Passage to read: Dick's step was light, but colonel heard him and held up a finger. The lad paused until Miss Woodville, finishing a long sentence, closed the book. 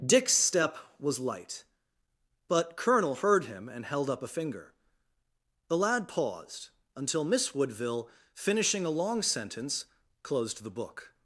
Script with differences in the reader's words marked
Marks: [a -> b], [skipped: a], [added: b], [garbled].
Dick's step was light, but colonel heard him and held up a finger. The lad paused until Miss Woodville, finishing a long sentence, closed the book.